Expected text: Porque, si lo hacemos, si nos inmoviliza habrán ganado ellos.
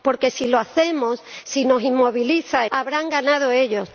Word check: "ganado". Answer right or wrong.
right